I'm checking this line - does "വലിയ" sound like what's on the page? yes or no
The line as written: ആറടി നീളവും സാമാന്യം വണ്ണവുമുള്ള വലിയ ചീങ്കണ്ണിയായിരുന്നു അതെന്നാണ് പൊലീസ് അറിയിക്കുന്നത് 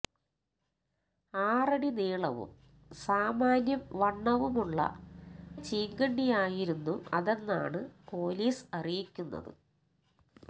no